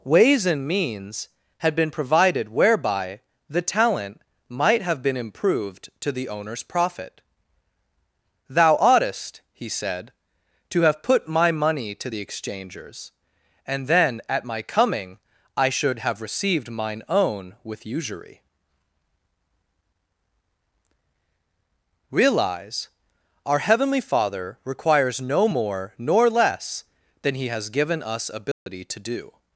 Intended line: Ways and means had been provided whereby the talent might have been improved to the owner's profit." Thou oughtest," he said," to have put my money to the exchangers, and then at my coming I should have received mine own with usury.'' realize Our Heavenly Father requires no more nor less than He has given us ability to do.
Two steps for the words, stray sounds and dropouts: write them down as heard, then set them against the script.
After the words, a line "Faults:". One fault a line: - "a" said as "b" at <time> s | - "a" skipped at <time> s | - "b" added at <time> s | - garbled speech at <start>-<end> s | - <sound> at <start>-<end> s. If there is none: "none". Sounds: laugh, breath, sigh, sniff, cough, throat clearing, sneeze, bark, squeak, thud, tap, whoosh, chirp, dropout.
Ways and means had been provided whereby the talent might have been improved to the owner's profit." Thou oughtest," he said," to have put my money to the exchangers, and then at my coming I should have received mine own with usury.'' realize Our Heavenly Father requires no more nor less than He has given us ability to do.
Faults:
- dropout at 28.5-28.7 s